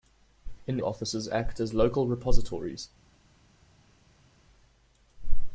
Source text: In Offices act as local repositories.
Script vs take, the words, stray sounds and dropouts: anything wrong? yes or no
no